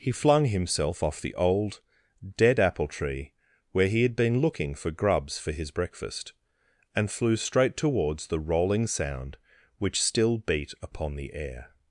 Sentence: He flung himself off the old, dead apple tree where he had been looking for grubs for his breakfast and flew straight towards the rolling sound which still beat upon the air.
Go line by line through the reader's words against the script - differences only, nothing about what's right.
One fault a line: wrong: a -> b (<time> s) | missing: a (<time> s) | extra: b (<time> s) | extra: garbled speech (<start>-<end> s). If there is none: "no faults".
no faults